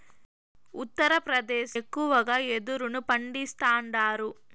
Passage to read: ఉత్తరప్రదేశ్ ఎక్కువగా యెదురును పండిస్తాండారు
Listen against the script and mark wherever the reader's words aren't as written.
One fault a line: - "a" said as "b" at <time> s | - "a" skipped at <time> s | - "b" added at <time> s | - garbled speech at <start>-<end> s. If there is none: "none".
none